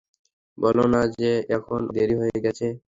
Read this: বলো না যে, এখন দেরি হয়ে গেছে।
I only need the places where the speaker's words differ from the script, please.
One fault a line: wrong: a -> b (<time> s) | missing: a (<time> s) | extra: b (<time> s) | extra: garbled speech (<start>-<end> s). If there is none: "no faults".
no faults